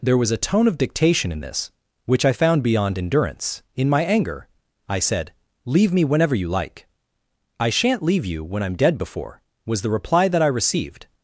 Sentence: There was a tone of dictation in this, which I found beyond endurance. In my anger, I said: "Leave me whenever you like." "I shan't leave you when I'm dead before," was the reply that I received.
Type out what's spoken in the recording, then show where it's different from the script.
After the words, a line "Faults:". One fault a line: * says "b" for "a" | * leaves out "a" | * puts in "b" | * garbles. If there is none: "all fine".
There was a tone of dictation in this, which I found beyond endurance. In my anger, I said: "Leave me whenever you like." "I shan't leave you when I'm dead before," was the reply that I received.
Faults:
all fine